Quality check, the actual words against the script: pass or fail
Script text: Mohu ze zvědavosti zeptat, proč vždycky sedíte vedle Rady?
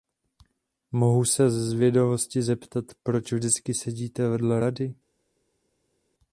fail